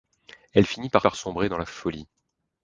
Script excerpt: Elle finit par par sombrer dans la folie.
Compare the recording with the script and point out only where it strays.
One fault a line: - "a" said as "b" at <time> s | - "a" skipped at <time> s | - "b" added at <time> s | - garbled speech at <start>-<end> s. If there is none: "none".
none